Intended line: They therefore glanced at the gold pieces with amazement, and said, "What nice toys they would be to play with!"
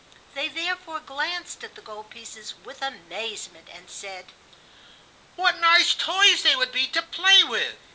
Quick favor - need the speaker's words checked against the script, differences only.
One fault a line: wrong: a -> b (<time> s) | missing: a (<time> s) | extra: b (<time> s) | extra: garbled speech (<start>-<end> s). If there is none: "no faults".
no faults